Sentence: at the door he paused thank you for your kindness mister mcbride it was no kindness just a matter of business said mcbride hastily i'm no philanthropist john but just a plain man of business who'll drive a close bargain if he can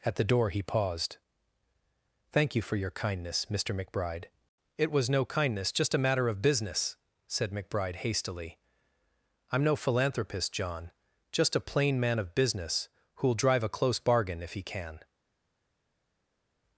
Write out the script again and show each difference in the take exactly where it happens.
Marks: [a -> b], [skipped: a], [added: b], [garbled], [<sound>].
at the door he paused thank you for your kindness mister mcbride it was no kindness just a matter of business said mcbride hastily i'm no philanthropist john [skipped: but] just a plain man of business who'll drive a close bargain if he can